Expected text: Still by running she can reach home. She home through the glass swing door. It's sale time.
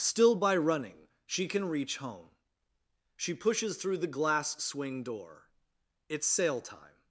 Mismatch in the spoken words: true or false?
true